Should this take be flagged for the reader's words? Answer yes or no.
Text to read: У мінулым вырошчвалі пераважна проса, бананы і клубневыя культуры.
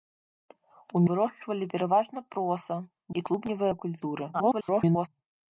yes